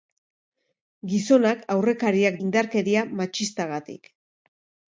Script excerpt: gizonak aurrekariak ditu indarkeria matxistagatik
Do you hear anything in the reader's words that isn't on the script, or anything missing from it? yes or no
yes